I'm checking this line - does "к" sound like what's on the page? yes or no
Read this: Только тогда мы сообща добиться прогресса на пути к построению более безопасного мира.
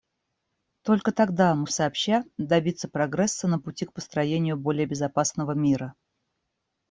yes